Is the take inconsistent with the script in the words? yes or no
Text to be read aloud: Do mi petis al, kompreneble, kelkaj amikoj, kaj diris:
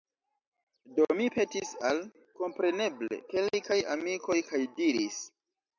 no